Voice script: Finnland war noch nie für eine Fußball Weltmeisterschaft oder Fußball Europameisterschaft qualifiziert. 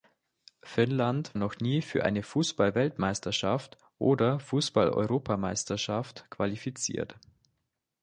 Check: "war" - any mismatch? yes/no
yes